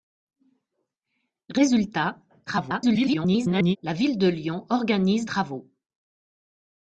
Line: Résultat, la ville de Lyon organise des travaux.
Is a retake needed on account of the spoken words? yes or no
yes